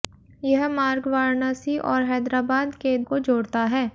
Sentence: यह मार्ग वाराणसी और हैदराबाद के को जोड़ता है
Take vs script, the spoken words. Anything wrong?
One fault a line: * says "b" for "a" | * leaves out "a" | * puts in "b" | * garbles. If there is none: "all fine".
all fine